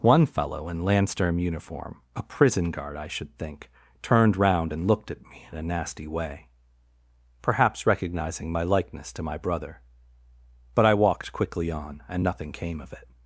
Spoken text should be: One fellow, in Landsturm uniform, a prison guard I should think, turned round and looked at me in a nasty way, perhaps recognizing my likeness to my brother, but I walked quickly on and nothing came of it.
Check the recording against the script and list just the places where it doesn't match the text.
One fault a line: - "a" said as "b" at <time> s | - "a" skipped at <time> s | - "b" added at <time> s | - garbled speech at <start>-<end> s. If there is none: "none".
none